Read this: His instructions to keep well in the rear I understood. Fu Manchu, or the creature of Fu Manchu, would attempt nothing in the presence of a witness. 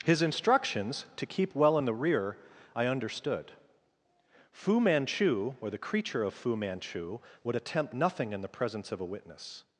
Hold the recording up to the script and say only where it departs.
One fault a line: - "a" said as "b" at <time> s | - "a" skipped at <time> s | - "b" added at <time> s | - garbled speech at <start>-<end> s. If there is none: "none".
none